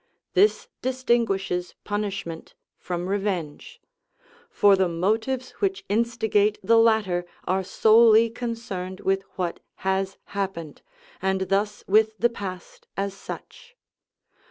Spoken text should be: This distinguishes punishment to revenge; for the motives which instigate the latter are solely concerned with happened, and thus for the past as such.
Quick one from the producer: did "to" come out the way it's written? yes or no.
no